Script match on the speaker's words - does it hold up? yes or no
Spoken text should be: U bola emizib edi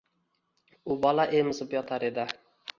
no